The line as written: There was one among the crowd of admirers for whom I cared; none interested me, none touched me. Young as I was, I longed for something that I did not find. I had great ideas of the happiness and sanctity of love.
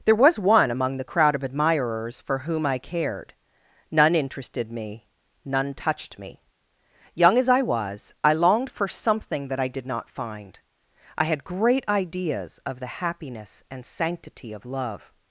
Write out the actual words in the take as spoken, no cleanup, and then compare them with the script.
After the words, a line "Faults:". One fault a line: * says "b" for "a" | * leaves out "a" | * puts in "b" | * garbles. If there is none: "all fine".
There was one among the crowd of admirers for whom I cared; none interested me, none touched me. Young as I was, I longed for something that I did not find. I had great ideas of the happiness and sanctity of love.
Faults:
all fine